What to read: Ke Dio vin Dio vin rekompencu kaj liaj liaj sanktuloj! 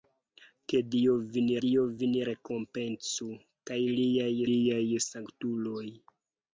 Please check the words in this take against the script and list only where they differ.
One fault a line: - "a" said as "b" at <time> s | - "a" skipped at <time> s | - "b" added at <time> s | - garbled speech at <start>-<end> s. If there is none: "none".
none